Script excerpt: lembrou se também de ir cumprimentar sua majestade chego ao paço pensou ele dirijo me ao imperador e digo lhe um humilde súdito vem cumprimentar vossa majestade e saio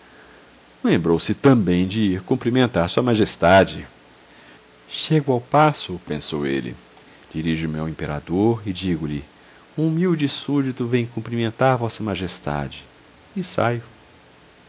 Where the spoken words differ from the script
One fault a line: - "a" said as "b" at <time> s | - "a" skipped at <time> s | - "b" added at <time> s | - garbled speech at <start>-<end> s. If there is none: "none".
none